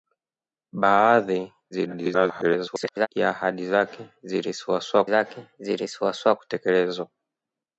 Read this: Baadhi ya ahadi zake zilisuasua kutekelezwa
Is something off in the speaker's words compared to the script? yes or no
yes